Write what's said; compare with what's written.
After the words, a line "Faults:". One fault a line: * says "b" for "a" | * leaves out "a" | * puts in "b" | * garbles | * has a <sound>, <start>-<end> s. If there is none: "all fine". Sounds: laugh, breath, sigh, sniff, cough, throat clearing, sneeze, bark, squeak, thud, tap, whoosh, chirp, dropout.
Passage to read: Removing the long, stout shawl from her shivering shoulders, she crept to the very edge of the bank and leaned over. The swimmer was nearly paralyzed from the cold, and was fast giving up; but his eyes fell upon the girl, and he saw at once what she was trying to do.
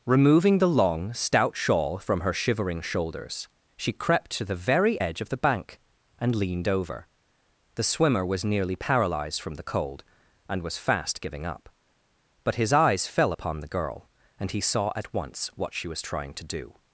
Removing the long, stout shawl from her shivering shoulders, she crept to the very edge of the bank and leaned over. The swimmer was nearly paralyzed from the cold, and was fast giving up; but his eyes fell upon the girl, and he saw at once what she was trying to do.
Faults:
all fine